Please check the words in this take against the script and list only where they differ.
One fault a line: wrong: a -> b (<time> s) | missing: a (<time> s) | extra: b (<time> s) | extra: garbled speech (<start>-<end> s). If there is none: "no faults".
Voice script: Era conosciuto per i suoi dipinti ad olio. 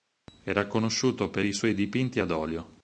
no faults